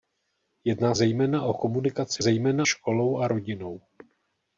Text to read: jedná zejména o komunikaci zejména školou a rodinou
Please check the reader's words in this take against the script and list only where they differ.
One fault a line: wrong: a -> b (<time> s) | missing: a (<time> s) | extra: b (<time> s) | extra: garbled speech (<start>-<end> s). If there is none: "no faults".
no faults